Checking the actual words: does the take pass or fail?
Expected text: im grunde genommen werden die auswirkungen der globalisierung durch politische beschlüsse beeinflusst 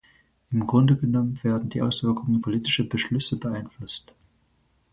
fail